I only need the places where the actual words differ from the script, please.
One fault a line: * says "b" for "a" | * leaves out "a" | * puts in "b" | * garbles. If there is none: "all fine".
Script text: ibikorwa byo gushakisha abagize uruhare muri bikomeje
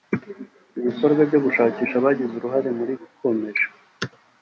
all fine